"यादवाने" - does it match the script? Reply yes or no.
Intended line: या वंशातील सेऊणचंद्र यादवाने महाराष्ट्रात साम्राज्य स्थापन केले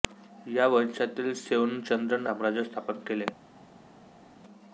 no